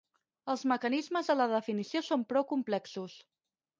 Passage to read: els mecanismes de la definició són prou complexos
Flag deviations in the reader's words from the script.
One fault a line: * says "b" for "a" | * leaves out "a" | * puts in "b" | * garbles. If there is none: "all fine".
all fine